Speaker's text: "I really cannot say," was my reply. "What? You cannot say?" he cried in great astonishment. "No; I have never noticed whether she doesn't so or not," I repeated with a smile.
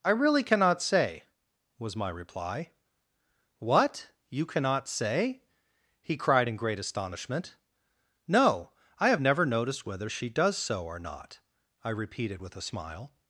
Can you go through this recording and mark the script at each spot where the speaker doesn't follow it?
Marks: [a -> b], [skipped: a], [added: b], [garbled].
"I really cannot say," was my reply. "What? You cannot say?" he cried in great astonishment. "No; I have never noticed whether she [doesn't -> does] so or not," I repeated with a smile.